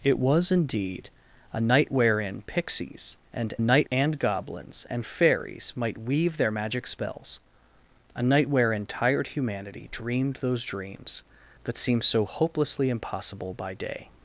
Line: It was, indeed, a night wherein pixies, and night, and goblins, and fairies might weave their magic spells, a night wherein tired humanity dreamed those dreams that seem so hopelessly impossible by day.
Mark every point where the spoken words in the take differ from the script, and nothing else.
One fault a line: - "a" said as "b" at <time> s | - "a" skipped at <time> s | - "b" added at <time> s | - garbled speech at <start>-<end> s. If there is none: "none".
none